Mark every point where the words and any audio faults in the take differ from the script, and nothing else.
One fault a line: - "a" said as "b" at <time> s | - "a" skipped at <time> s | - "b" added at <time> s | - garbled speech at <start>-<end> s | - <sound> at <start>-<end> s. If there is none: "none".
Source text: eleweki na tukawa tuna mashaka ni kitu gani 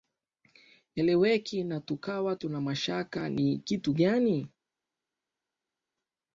none